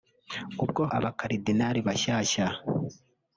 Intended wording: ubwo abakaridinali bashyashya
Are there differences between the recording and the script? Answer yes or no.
no